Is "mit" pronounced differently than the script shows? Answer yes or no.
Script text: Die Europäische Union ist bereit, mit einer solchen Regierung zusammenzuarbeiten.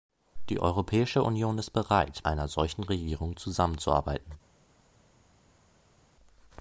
yes